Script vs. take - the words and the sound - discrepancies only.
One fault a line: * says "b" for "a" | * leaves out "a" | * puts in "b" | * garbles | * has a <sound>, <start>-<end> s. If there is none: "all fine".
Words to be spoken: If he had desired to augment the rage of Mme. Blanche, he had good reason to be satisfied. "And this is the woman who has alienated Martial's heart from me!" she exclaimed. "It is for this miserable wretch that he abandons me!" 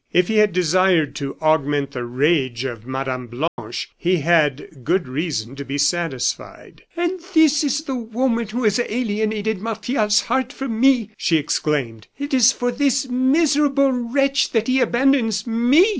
* has a dropout, 3.5-3.6 s